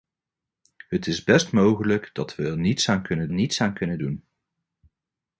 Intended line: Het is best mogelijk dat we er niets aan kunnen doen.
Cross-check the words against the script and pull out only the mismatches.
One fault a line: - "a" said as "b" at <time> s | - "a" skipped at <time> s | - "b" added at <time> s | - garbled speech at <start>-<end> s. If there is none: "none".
- "niets aan kunnen" added at 3.3 s